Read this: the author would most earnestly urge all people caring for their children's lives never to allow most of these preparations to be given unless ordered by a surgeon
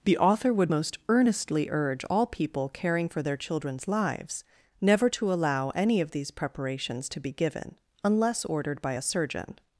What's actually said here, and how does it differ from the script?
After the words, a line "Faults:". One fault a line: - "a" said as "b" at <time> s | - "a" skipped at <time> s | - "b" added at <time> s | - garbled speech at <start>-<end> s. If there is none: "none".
the author would most earnestly urge all people caring for their children's lives never to allow any of these preparations to be given unless ordered by a surgeon
Faults:
- "most" said as "any" at 5.7 s